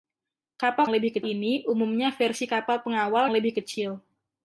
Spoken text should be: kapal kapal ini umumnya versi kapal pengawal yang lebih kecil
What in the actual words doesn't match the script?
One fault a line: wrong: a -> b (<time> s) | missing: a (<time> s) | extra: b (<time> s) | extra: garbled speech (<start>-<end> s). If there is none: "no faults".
wrong: kapal -> lebih (0.9 s)
missing: yang (3.3 s)